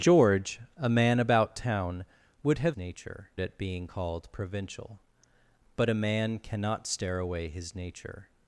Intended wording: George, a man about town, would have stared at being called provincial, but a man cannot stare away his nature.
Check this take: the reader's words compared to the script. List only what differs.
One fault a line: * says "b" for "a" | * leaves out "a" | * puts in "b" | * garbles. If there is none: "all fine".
* says "nature" for "stared"